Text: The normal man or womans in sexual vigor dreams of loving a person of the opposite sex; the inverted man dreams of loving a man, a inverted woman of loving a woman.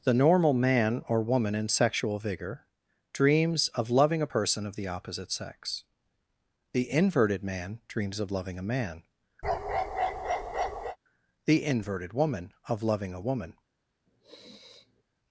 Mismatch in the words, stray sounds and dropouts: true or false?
true